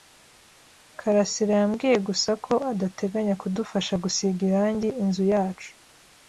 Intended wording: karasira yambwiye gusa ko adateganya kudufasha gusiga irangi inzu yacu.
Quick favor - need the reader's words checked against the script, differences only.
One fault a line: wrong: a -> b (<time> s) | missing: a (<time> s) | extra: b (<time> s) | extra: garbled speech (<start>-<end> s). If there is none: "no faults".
no faults